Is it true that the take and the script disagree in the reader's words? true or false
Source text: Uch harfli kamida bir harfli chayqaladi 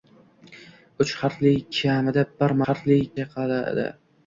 false